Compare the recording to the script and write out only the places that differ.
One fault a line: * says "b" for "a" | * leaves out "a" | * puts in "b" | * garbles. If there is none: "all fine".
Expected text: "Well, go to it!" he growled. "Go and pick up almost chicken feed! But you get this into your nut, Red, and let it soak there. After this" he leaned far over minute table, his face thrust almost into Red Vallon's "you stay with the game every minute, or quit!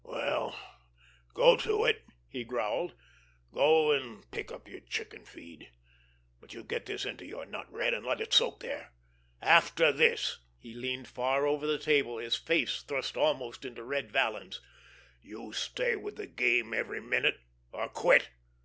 * says "your" for "almost"
* says "the" for "minute"